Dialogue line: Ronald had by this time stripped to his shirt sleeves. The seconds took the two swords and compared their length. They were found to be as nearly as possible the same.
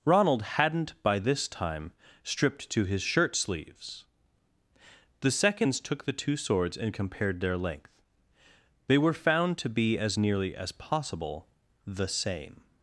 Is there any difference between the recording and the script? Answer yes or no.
yes